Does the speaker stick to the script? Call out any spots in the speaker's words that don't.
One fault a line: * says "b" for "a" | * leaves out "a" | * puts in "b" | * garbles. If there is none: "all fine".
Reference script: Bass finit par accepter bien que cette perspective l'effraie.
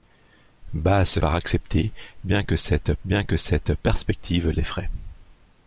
* leaves out "finit"
* puts in "bien que cette"